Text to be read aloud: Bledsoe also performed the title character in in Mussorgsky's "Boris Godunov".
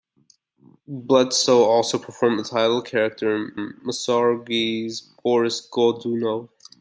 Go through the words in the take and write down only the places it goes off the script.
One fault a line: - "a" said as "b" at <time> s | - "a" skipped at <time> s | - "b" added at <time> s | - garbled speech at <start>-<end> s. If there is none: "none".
none